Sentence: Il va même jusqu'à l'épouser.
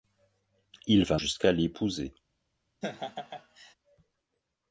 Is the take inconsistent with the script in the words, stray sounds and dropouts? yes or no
yes